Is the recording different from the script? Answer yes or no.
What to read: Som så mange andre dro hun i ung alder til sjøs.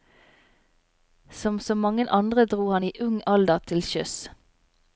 yes